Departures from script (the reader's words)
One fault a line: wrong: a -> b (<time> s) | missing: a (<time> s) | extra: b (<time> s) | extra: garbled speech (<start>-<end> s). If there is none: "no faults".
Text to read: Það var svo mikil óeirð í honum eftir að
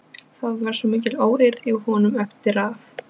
no faults